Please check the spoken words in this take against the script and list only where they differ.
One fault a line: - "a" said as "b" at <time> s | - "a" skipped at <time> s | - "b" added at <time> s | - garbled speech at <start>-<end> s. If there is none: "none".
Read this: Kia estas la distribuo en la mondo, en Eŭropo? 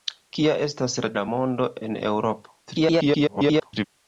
- "distribuo en" skipped at 1.1 s
- garbled speech at 2.7-3.9 s